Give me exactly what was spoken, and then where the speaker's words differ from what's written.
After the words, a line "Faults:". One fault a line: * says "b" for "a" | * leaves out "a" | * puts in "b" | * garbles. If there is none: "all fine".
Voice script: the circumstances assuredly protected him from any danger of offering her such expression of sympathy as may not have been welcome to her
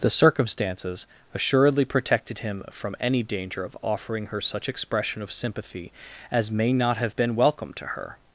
the circumstances assuredly protected him from any danger of offering her such expression of sympathy as may not have been welcome to her
Faults:
all fine